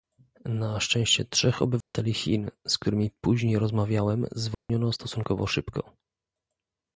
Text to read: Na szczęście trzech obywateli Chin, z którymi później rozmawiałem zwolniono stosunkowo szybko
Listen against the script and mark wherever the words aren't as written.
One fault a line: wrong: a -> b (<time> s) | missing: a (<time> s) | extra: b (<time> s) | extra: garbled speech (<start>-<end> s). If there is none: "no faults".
no faults